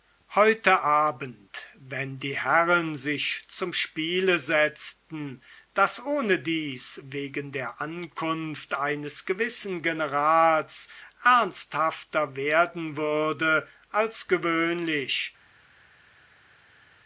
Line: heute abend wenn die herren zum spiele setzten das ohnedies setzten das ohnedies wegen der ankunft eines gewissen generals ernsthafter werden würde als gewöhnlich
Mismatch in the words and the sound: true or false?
true